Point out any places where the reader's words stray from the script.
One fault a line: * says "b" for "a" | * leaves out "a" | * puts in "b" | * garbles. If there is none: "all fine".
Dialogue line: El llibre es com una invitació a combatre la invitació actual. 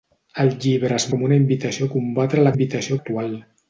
all fine